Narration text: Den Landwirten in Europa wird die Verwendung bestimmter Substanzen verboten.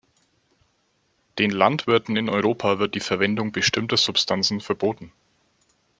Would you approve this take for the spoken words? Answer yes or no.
yes